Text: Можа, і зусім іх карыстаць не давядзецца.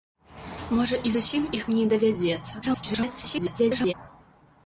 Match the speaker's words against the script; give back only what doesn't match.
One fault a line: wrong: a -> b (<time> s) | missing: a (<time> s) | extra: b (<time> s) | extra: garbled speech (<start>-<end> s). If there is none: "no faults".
missing: карыстаць (1.6 s)
extra: garbled speech (2.6-3.9 s)